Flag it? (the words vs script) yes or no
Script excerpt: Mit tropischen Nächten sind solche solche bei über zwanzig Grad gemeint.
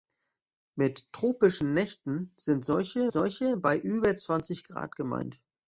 no